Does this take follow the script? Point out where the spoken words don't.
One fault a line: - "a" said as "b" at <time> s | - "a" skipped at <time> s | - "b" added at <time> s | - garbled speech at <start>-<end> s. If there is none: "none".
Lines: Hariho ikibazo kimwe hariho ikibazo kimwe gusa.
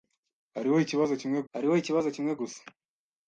none